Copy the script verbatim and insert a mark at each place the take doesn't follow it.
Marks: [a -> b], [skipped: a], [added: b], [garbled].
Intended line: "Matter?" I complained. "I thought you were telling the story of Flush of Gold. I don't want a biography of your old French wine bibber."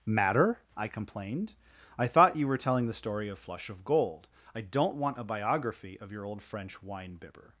"Matter?" I complained. "I thought you were telling the story of Flush of Gold. I don't want a biography of your old French wine bibber."